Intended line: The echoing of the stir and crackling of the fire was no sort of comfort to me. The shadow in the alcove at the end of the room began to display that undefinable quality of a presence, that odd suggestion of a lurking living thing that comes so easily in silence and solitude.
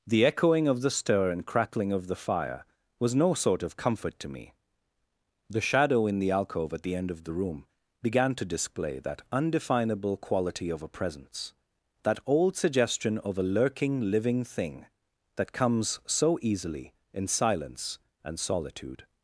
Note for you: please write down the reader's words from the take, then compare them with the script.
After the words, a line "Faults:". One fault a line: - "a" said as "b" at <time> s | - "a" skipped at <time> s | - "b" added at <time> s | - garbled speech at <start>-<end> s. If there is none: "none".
The echoing of the stir and crackling of the fire was no sort of comfort to me. The shadow in the alcove at the end of the room began to display that undefinable quality of a presence, that old suggestion of a lurking living thing that comes so easily in silence and solitude.
Faults:
- "odd" said as "old" at 12.2 s